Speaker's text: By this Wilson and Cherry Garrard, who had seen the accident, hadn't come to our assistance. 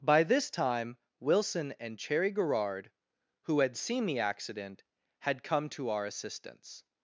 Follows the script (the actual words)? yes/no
no